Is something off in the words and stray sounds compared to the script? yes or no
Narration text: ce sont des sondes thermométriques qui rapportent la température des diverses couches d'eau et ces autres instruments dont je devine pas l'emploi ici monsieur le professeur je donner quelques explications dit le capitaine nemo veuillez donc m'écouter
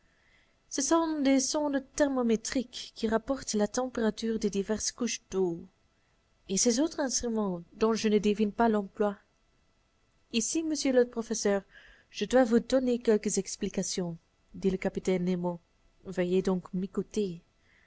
yes